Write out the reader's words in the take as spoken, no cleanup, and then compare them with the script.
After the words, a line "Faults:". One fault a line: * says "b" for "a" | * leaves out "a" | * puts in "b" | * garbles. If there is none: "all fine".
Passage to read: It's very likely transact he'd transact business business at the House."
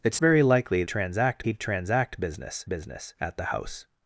It's very likely transact he'd transact business business at the House."
Faults:
all fine